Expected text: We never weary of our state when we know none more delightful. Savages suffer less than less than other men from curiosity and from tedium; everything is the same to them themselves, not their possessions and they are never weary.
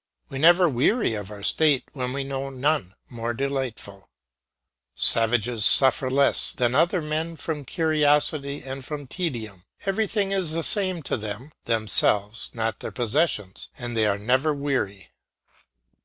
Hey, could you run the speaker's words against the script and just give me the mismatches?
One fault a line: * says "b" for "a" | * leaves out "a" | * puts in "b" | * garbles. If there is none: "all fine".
* leaves out "less than"